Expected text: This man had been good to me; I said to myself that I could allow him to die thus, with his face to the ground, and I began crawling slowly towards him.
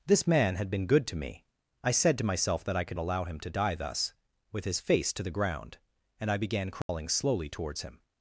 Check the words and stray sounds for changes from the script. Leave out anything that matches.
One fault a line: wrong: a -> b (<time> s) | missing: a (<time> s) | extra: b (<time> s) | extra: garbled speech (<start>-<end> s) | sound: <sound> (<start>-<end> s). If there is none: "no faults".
sound: dropout (6.8-6.9 s)